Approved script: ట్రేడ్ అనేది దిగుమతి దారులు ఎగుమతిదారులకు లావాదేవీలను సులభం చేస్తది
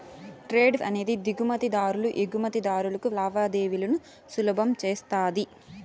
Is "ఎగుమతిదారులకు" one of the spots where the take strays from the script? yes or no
no